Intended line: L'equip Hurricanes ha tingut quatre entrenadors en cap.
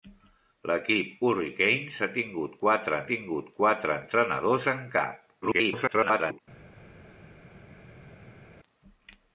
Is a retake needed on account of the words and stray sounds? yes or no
yes